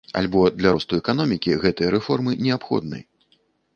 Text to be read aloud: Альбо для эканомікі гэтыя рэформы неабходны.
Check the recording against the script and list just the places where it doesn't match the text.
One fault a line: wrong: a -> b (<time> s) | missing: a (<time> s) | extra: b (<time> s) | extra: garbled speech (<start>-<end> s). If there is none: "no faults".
extra: росту (0.7 s)